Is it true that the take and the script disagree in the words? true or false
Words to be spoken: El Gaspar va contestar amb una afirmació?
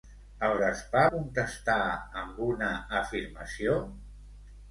true